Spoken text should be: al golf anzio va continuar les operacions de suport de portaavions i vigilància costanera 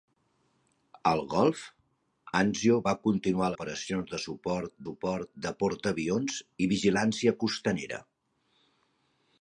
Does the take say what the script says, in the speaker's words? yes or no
no